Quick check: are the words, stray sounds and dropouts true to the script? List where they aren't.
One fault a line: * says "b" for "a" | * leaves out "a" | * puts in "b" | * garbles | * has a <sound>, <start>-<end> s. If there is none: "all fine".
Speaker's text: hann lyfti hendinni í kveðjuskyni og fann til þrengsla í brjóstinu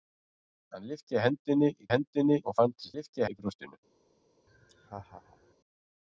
* says "hendinni" for "kveðjuskyni"
* says "lyfti" for "þrengsla"
* has a laugh, 4.5-5.5 s